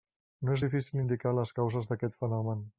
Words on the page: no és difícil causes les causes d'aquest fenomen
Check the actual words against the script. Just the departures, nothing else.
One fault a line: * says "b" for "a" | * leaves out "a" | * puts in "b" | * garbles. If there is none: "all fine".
* says "indicar" for "causes"